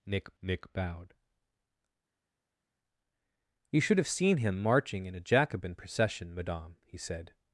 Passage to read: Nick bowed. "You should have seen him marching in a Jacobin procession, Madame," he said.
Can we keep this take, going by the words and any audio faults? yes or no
no